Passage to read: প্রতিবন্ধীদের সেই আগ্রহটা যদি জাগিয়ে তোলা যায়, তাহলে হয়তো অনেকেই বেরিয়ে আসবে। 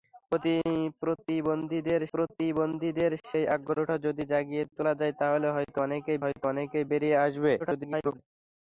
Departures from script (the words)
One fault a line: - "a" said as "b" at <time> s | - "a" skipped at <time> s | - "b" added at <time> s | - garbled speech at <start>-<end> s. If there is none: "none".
- "প্রতিবন্ধীদের" added at 2.1 s
- "হয়তো অনেকেই" added at 6.2 s
- garbled speech at 7.6-8.2 s